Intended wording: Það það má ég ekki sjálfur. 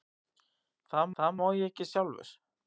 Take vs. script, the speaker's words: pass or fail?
pass